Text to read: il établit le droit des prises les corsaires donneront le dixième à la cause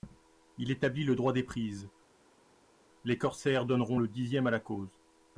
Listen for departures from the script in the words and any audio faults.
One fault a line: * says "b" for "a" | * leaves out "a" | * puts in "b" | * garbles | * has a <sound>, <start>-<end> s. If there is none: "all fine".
all fine